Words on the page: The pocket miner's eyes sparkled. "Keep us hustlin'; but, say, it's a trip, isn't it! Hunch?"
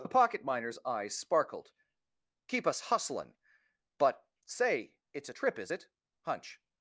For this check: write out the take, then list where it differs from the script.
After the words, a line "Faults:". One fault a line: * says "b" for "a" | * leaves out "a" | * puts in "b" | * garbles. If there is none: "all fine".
The pocket miner's eyes sparkled. "Keep us hustlin'; but, say, it's a trip, is it! Hunch?"
Faults:
* says "is" for "isn't"